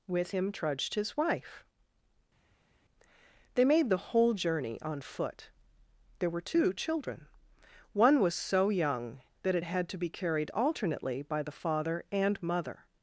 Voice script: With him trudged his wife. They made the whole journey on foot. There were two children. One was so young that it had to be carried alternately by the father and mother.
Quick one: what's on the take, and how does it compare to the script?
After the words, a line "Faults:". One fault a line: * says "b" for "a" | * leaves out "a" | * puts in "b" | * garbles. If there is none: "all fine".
With him trudged his wife. They made the whole journey on foot. There were two children. One was so young that it had to be carried alternately by the father and mother.
Faults:
all fine